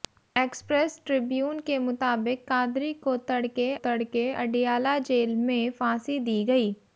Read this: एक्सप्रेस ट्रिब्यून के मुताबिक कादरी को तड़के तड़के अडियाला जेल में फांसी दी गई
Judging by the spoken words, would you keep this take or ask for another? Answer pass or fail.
pass